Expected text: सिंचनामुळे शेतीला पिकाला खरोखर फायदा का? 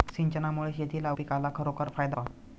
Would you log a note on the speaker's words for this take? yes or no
no